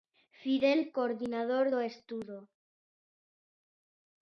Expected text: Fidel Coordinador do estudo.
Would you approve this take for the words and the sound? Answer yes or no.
yes